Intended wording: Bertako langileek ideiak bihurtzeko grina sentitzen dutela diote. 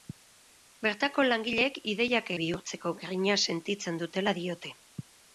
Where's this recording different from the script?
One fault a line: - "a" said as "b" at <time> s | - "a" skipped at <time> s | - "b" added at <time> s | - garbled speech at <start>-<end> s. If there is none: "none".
none